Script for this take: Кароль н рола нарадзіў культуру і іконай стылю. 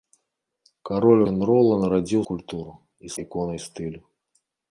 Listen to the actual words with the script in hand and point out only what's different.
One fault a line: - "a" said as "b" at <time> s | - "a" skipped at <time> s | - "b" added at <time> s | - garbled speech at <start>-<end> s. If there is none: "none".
none